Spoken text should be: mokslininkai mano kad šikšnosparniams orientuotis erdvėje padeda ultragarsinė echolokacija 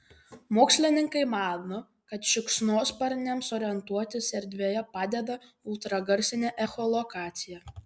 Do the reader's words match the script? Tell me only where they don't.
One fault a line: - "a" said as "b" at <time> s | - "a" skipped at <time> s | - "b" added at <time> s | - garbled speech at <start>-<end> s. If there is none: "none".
none